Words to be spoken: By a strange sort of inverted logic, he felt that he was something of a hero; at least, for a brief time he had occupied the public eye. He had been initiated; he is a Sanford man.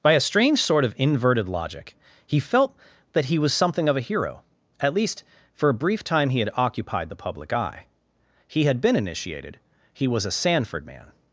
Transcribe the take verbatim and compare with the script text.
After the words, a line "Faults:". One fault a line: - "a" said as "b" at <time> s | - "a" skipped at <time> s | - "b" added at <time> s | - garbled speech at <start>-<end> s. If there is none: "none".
By a strange sort of inverted logic, he felt that he was something of a hero; at least, for a brief time he had occupied the public eye. He had been initiated; he was a Sanford man.
Faults:
- "is" said as "was" at 10.1 s